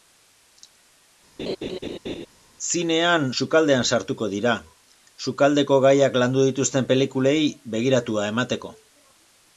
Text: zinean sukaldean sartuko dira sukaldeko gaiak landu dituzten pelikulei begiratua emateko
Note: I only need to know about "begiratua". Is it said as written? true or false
true